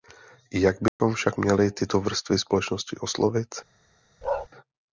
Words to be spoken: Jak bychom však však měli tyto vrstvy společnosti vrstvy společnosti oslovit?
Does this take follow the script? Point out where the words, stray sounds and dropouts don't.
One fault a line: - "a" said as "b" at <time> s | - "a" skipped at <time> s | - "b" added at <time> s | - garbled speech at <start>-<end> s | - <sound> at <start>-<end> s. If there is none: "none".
- dropout at 0.9-1.0 s
- "však" skipped at 1.4 s
- "vrstvy společnosti" skipped at 3.0 s
- bark at 4.2-4.5 s